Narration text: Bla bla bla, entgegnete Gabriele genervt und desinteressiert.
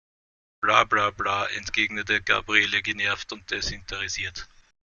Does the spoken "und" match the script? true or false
true